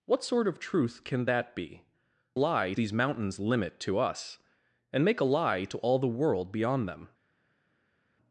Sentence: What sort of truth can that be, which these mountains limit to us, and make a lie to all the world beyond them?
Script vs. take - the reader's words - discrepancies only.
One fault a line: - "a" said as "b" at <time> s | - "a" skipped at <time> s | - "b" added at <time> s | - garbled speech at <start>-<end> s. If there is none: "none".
- "which" said as "lie" at 2.3 s